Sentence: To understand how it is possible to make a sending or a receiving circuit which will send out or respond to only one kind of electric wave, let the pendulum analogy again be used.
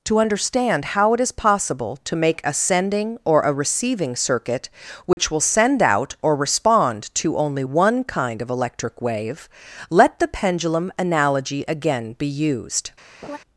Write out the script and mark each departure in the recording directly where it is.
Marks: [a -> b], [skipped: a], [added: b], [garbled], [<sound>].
To understand how it is possible to make a sending or a receiving circuit which [dropout] will send out or respond to only one kind of electric wave, let the pendulum analogy again be used. [laugh]